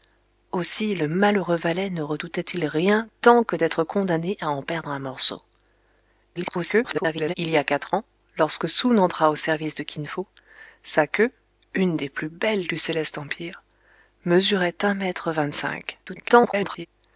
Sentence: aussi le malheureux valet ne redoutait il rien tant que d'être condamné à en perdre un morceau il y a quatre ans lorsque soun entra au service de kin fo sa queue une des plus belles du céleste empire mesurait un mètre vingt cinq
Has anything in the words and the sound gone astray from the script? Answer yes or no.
yes